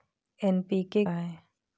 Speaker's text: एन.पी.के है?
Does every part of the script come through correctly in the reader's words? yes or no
yes